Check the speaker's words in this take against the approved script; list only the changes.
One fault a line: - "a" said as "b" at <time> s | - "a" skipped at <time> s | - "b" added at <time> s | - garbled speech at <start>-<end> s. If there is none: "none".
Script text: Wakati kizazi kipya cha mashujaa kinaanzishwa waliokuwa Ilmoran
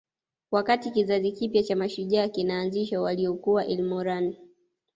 none